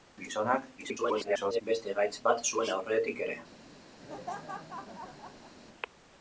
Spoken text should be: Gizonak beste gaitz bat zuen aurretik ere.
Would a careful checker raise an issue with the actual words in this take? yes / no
yes